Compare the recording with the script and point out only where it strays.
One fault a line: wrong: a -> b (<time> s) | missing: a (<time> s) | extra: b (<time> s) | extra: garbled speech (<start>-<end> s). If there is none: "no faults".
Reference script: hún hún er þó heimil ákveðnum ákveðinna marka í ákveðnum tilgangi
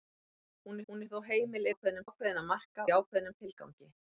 no faults